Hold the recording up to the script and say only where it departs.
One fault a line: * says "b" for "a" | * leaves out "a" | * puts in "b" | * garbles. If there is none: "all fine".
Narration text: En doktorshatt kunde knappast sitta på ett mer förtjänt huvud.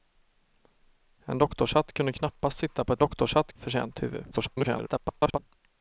* says "doktorshatt" for "mer"
* garbles